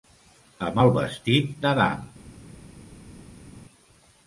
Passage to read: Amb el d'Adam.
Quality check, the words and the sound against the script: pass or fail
fail